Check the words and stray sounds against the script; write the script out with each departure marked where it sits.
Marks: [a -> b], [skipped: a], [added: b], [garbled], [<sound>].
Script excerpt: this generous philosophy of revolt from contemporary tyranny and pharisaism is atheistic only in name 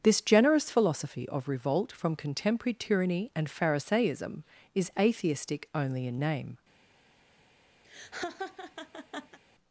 this generous philosophy of revolt from contemporary tyranny and pharisaism is atheistic only in name [laugh]